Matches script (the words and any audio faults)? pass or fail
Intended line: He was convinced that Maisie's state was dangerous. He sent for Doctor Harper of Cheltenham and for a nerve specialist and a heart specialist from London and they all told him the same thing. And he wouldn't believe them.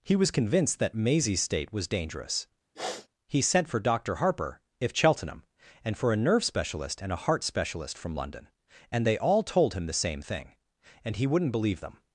fail